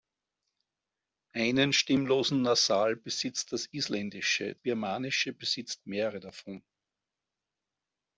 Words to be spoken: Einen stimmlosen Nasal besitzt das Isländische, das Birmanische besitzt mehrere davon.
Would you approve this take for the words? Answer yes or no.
no